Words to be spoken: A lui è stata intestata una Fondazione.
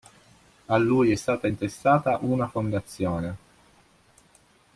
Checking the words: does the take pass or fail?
pass